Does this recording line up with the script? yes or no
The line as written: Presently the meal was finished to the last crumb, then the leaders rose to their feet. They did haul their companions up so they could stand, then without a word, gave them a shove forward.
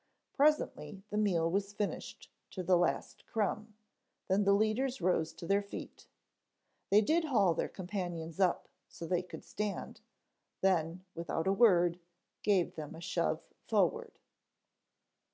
yes